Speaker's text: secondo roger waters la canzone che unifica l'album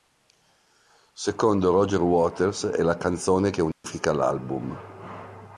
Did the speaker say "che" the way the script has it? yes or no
yes